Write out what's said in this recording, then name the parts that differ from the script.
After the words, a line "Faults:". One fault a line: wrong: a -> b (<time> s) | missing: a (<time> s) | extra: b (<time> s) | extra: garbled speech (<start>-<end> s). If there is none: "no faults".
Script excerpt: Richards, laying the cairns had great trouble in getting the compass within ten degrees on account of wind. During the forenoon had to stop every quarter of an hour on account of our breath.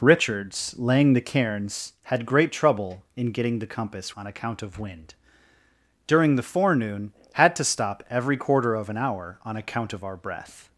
Richards, laying the cairns had great trouble in getting the compass on account of wind. During the forenoon had to stop every quarter of an hour on account of our breath.
Faults:
missing: within ten degrees (4.2 s)